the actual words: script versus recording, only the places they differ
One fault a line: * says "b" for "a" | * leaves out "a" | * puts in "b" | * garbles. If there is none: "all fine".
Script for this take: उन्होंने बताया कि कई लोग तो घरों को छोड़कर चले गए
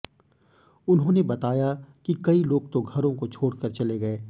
all fine